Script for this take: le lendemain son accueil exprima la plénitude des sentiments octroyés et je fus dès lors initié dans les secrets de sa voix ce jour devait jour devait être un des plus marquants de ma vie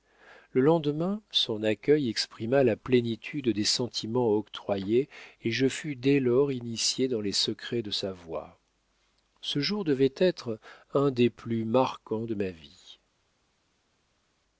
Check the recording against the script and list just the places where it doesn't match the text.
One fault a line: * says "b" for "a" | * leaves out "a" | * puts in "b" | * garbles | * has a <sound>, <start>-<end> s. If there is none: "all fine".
* leaves out "jour devait"